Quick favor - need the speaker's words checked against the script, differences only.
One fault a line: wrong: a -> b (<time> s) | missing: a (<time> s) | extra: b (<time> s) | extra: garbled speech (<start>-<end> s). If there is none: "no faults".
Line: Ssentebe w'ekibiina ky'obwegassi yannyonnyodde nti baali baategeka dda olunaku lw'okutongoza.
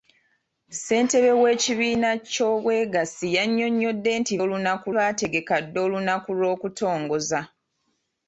wrong: baali -> olunaku (4.4 s)